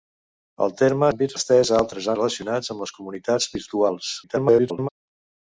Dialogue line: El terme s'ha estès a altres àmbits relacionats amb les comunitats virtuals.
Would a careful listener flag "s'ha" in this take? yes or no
yes